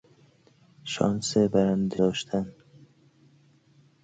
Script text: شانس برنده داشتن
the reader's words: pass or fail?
pass